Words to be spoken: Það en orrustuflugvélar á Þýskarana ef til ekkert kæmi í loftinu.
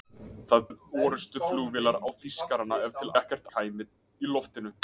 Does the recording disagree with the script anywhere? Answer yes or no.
no